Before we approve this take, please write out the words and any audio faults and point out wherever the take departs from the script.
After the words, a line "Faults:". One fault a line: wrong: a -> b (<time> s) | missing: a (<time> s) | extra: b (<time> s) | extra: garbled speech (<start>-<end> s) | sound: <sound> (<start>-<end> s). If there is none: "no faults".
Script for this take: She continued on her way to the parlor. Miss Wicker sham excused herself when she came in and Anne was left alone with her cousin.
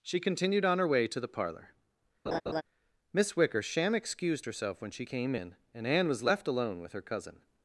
She continued on her way to the parlor. Miss Wicker sham excused herself when she came in and Anne was left alone with her cousin.
Faults:
sound: laugh (2.3-2.6 s)